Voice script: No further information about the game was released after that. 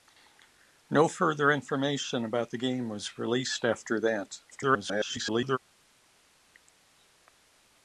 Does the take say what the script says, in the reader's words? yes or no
no